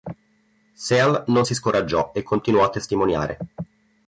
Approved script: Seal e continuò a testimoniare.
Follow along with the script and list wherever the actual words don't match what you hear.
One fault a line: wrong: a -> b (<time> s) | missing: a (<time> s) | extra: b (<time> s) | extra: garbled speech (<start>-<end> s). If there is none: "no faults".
extra: non si scoraggiò (1.3 s)